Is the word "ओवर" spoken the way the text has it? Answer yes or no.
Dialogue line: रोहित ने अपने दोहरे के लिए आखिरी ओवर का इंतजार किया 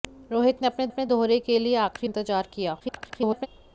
no